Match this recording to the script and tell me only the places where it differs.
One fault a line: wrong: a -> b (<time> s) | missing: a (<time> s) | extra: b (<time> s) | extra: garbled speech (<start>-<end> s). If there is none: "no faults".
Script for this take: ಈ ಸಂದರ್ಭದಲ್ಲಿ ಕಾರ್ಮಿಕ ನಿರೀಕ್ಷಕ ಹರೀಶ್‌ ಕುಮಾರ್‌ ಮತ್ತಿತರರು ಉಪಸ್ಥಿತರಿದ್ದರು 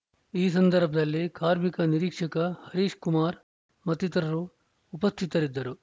no faults